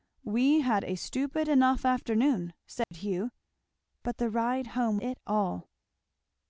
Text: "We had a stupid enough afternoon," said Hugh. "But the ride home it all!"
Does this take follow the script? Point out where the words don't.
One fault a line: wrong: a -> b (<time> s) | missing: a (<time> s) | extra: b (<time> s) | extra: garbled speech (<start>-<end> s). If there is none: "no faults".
no faults